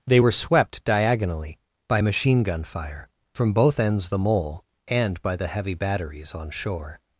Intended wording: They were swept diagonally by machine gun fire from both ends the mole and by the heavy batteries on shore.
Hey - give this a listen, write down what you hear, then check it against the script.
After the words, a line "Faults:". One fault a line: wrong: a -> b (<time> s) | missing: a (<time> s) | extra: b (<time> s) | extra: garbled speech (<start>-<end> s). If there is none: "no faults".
They were swept diagonally by machine gun fire from both ends the mole and by the heavy batteries on shore.
Faults:
no faults